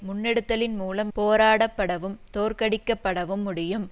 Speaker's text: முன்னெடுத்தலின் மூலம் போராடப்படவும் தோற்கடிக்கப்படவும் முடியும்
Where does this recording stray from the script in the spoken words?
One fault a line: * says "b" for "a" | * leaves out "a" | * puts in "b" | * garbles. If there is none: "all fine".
all fine